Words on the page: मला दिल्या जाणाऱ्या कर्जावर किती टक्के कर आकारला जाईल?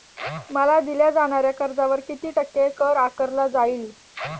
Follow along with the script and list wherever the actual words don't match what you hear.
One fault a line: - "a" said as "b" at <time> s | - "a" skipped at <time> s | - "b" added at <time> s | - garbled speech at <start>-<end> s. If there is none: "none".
none